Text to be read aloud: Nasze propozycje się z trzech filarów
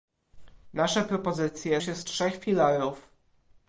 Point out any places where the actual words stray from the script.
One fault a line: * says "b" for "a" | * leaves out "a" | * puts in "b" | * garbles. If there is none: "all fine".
all fine